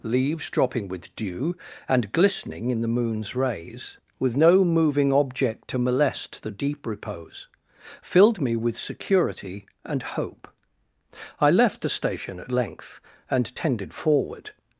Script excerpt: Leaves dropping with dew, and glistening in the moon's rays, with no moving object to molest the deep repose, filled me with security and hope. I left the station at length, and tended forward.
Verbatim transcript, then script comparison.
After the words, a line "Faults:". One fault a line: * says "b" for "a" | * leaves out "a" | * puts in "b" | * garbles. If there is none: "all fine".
Leaves dropping with dew, and glistening in the moon's rays, with no moving object to molest the deep repose, filled me with security and hope. I left the station at length, and tended forward.
Faults:
all fine